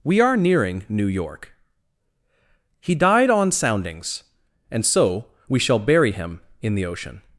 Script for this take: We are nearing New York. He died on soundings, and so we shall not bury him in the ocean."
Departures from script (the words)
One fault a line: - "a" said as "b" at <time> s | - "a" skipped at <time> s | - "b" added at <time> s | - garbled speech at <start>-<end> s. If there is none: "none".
- "not" skipped at 5.8 s